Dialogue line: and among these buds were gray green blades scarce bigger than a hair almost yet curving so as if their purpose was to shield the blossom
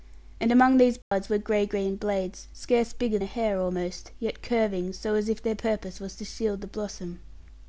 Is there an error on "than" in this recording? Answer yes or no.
yes